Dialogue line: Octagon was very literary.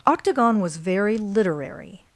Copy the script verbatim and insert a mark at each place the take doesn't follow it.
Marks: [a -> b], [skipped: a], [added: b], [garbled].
Octagon was very literary.